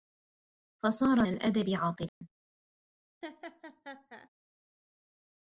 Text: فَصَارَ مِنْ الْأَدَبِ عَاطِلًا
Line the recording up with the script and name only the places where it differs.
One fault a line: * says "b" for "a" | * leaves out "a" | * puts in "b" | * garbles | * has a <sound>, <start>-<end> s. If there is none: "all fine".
* leaves out "مِنْ"
* has a dropout, 2.1-2.2 s
* has a laugh, 3.2-4.3 s